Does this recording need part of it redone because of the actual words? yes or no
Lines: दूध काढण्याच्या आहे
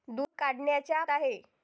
no